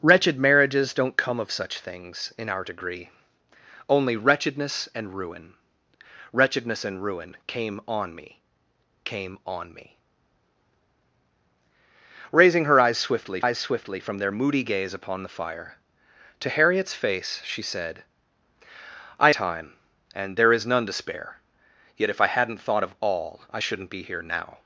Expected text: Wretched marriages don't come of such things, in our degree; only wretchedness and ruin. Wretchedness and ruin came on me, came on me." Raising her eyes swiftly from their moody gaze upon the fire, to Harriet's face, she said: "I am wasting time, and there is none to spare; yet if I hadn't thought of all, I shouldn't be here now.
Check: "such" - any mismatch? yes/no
no